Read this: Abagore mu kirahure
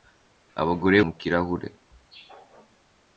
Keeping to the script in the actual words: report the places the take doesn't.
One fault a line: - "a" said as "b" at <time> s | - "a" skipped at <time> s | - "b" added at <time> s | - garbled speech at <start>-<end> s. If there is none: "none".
none